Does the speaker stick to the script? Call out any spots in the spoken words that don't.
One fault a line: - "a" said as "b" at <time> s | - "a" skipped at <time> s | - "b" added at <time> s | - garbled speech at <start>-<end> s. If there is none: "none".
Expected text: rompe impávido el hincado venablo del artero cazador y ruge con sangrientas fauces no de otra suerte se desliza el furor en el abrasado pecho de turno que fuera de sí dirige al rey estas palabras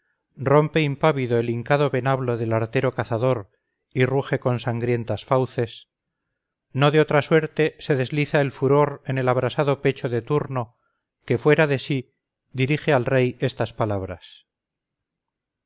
none